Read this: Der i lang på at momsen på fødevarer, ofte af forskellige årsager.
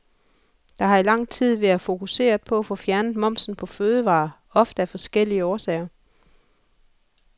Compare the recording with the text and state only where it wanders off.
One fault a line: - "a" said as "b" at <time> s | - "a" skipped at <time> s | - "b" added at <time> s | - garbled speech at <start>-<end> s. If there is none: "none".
- "har" added at 0.8 s
- "tid været fokuseret" added at 1.3 s
- "få fjernet" added at 2.6 s